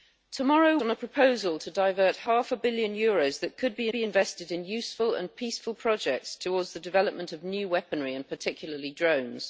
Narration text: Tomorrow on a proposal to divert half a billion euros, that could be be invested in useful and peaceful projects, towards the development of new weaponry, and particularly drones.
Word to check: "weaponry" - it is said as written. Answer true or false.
true